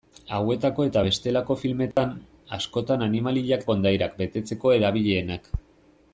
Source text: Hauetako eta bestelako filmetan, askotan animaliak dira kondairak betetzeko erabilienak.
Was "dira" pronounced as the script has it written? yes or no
no